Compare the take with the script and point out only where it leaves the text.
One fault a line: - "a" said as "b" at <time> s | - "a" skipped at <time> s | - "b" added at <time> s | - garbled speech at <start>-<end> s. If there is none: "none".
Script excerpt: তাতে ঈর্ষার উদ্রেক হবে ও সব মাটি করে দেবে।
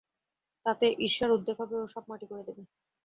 none